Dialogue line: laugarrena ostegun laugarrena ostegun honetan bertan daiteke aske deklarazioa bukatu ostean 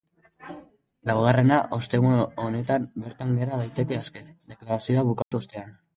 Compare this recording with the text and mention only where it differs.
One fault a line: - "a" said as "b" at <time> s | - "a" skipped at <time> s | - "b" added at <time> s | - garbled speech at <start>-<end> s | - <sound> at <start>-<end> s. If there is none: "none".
- "laugarrena ostegun" skipped at 2.2 s
- "gera" added at 3.4 s
- dropout at 5.2-5.3 s